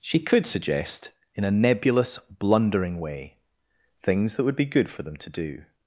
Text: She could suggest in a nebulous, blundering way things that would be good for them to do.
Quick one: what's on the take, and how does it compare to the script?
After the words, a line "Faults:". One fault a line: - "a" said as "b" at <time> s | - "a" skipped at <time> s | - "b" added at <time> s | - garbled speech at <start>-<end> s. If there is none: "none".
She could suggest in a nebulous, blundering way things that would be good for them to do.
Faults:
none